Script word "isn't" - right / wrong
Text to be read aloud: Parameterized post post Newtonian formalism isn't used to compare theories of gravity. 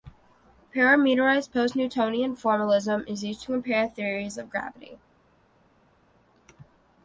wrong